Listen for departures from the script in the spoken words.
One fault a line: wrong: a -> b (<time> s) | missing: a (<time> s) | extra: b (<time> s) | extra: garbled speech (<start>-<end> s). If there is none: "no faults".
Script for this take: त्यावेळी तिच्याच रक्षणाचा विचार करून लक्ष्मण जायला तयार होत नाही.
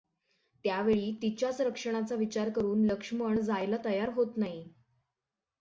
no faults